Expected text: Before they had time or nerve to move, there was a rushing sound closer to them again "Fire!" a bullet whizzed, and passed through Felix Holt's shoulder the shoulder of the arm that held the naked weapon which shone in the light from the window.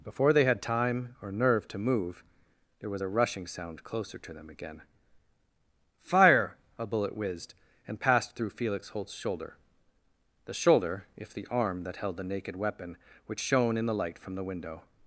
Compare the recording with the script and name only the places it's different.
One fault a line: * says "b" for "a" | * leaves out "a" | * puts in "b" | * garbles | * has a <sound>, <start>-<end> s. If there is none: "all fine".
* says "if" for "of"